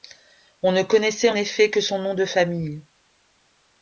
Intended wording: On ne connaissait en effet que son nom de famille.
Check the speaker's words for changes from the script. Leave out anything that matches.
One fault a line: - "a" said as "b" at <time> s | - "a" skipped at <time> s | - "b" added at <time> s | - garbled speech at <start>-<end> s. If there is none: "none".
none